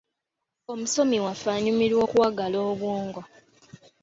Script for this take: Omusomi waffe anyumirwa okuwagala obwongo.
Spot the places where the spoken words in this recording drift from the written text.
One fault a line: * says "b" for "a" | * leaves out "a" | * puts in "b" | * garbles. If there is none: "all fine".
all fine